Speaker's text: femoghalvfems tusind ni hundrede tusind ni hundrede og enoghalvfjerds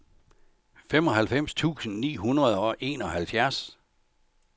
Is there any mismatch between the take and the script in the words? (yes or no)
yes